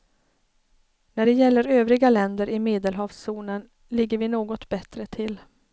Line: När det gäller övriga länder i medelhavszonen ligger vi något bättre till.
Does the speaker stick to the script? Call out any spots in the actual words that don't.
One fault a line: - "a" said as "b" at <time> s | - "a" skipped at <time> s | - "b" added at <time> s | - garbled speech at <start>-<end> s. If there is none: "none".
none